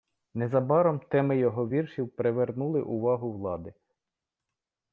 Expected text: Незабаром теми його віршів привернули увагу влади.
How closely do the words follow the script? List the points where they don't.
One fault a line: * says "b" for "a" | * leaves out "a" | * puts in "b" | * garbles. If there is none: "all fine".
all fine